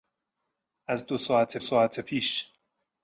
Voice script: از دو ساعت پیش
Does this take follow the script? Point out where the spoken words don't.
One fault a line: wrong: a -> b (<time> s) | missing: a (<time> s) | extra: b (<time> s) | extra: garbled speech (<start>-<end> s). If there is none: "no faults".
extra: ساعت (1.6 s)